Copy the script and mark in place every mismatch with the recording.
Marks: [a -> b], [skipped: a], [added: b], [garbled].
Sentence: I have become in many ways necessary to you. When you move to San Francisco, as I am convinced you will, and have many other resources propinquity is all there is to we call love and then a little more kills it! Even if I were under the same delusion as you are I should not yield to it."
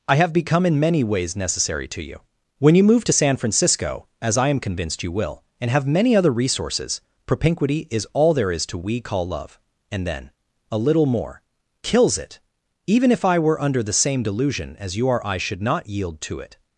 I have become in many ways necessary to you. When you move to San Francisco, as I am convinced you will, and have many other resources propinquity is all there is to we call love and then a little more kills it! Even if I were under the same delusion as you are I should not yield to it."